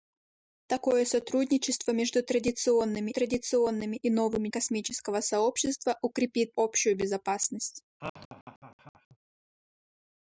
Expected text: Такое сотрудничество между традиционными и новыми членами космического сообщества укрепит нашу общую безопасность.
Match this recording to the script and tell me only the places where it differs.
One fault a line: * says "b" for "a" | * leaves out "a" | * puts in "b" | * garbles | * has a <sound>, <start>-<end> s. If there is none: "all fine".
* puts in "традиционными"
* leaves out "членами"
* leaves out "нашу"
* has a laugh, 8.0-9.2 s